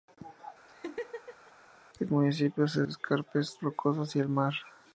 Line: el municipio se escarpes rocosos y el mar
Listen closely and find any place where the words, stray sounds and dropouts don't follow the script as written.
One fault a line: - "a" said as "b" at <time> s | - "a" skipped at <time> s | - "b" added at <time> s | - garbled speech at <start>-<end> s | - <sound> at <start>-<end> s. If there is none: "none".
- laugh at 0.7-1.5 s